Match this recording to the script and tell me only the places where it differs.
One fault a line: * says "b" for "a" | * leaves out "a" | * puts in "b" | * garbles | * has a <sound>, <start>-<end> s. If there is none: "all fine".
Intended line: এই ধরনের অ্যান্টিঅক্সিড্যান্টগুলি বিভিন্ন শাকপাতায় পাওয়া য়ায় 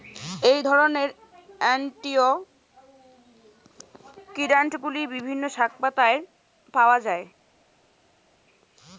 all fine